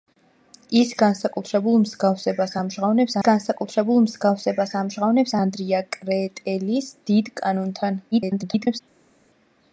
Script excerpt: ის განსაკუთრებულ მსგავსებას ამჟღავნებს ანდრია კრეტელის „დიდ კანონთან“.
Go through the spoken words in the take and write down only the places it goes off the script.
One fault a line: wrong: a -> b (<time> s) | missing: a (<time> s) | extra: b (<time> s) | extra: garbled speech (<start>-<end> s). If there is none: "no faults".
extra: განსაკუთრებულ მსგავსებას ამჟღავნებს (3.3 s)
extra: garbled speech (8.1-8.8 s)